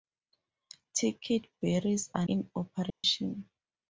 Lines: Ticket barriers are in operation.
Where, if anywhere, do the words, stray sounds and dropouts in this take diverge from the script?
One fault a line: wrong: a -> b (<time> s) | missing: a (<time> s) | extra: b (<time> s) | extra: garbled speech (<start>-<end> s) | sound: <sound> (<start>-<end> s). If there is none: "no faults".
sound: dropout (2.9-3.0 s)